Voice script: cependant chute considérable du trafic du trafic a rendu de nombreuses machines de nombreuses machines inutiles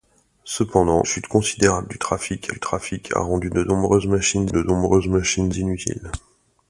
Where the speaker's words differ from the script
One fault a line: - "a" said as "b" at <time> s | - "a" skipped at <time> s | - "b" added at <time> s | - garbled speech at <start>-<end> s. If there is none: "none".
none